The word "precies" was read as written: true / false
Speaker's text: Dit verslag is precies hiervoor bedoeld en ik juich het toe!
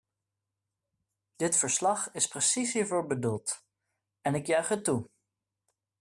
true